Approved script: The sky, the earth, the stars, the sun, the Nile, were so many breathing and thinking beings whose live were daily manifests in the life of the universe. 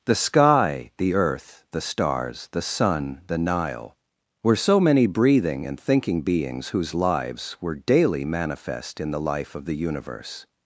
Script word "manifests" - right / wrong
wrong